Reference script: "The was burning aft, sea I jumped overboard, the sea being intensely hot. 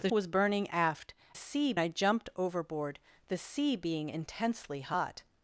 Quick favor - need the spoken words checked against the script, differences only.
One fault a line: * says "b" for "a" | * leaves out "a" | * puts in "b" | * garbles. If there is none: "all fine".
all fine